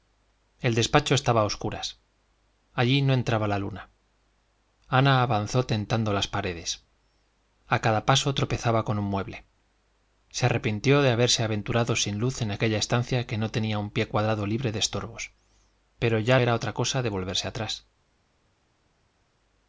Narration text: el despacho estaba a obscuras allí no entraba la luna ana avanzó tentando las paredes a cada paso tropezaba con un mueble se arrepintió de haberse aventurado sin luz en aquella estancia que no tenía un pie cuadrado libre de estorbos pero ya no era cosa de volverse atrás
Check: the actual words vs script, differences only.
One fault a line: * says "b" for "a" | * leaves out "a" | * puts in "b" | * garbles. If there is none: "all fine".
* leaves out "no"